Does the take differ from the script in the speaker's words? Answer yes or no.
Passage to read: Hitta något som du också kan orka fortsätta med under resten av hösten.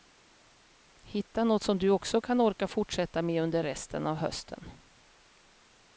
no